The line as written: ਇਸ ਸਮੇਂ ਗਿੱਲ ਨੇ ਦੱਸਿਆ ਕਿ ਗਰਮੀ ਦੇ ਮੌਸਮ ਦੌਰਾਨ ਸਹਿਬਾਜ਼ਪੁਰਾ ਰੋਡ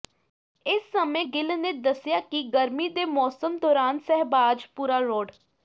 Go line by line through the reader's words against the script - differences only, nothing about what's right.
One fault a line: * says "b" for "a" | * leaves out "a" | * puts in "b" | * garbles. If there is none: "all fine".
all fine